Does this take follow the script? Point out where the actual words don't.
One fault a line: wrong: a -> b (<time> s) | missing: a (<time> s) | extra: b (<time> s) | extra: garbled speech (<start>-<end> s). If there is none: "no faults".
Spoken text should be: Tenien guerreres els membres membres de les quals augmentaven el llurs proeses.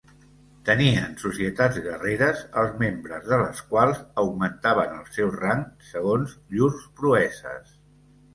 extra: societats (1.2 s)
missing: membres (3.3 s)
extra: seu rang segons (5.2 s)